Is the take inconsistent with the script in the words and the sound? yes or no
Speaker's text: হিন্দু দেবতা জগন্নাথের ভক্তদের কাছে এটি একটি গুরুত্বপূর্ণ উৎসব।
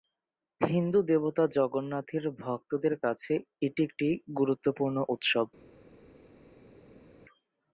no